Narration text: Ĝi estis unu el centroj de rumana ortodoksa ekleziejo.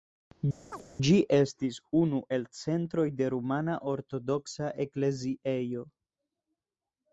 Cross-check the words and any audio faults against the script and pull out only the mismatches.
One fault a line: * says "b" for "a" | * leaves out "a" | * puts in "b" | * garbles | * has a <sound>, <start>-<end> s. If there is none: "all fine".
* has a chirp, 0.7-0.8 s